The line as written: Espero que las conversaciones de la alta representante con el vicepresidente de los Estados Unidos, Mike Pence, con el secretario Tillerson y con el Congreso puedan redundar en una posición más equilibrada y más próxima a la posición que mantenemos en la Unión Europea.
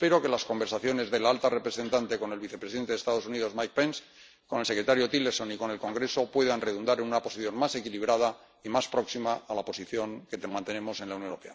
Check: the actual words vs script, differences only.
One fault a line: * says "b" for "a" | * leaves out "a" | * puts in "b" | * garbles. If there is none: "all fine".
all fine